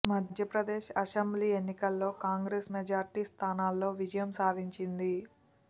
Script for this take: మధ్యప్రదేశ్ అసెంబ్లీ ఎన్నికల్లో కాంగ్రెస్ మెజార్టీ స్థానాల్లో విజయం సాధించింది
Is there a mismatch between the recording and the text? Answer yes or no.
no